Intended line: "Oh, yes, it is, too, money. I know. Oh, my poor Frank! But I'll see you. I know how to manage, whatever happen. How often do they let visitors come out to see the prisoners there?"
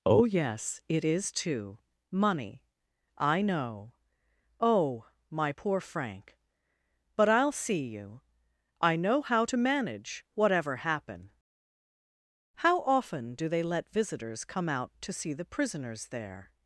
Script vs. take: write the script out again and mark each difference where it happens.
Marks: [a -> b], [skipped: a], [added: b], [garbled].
"Oh, yes, it is, too, money. I know. Oh, my poor Frank! But I'll see you. I know how to manage, whatever happen. How often do they let visitors come out to see the prisoners there?"